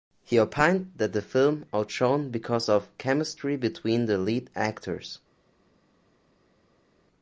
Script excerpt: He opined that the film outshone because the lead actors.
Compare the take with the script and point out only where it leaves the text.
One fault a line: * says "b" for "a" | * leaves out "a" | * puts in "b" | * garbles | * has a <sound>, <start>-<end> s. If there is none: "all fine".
* puts in "of chemistry between"